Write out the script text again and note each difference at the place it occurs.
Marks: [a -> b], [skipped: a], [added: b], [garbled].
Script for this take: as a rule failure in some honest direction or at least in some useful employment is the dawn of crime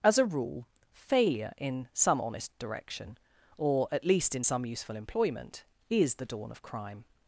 as a rule failure in some honest direction or at least in some useful employment is the dawn of crime